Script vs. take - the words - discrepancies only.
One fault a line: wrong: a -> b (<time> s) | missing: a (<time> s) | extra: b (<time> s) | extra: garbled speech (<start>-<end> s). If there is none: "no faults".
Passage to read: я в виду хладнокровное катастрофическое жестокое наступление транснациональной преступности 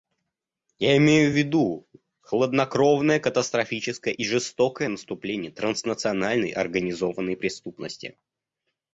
extra: имею (1.0 s)
extra: и (4.1 s)
extra: организованной (6.5 s)